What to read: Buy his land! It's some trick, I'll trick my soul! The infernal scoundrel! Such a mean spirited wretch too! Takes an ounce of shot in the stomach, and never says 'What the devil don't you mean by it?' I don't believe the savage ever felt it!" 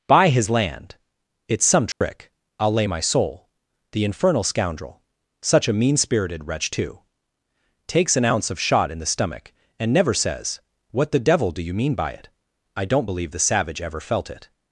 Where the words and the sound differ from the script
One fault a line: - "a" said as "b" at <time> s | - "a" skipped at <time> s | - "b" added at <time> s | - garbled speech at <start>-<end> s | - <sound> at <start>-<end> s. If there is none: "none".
- dropout at 1.9-2.0 s
- "trick" said as "lay" at 2.7 s
- "don't" said as "do" at 11.5 s